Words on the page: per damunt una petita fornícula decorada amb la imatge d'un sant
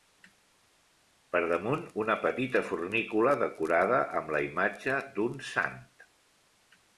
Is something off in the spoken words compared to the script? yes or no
no